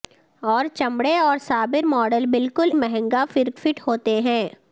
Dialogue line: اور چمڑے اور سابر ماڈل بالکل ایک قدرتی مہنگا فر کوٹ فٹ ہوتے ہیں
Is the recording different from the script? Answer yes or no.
yes